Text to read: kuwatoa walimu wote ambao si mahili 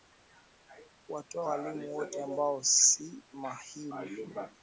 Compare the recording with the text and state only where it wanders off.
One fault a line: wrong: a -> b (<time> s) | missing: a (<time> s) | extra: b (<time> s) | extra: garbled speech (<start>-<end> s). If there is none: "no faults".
no faults